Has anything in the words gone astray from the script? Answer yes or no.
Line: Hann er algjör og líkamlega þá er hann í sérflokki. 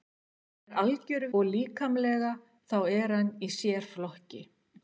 no